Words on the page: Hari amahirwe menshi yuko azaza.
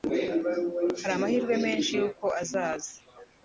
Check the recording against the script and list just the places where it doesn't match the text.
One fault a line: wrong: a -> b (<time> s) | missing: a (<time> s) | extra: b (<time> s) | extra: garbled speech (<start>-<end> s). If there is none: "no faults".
no faults